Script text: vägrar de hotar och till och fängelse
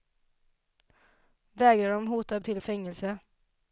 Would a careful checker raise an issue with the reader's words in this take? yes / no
no